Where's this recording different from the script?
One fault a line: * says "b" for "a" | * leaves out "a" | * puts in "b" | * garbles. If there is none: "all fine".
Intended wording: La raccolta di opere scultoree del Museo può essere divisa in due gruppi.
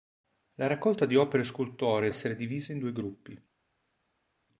* leaves out "del Museo può"